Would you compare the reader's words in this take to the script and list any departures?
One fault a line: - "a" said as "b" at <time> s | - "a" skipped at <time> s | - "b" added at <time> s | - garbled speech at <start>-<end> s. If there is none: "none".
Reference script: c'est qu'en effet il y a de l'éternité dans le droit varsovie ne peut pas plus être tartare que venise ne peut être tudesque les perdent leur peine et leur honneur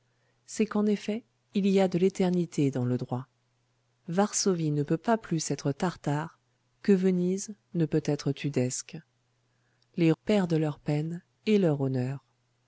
none